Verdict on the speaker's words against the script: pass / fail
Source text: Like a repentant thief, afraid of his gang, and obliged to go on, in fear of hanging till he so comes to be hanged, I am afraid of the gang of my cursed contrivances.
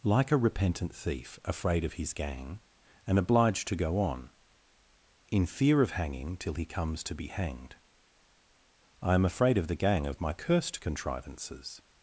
fail